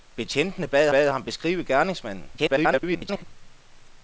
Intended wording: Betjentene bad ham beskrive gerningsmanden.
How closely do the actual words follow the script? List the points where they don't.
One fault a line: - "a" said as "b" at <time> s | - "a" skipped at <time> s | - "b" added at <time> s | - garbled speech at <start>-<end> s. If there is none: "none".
- "bad" added at 0.9 s
- garbled speech at 2.4-3.2 s